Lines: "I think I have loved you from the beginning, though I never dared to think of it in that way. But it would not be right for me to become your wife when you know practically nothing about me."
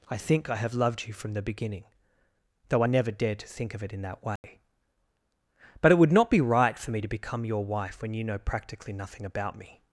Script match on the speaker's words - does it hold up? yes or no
yes